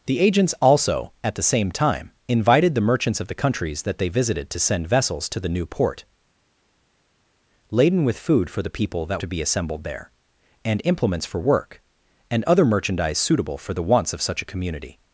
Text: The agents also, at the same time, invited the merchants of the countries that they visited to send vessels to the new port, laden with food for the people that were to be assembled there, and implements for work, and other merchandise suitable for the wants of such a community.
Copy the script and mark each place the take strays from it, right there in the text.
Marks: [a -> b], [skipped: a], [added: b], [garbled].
The agents also, at the same time, invited the merchants of the countries that they visited to send vessels to the new port, laden with food for the people that [skipped: were] to be assembled there, and implements for work, and other merchandise suitable for the wants of such a community.